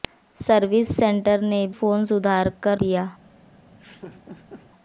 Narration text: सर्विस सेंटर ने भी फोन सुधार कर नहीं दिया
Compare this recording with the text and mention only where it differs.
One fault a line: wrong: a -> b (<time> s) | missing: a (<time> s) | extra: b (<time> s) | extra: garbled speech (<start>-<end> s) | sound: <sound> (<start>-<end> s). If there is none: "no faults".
missing: भी (1.6 s)
missing: नहीं (2.8 s)
sound: laugh (3.7-4.7 s)